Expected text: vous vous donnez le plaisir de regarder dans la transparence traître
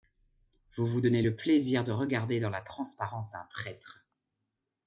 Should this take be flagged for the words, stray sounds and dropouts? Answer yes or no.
yes